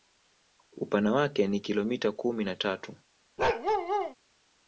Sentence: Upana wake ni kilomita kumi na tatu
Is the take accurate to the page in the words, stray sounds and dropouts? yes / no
no